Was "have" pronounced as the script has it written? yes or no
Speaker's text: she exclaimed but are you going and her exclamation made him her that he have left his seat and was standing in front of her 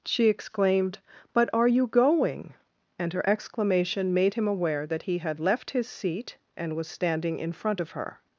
no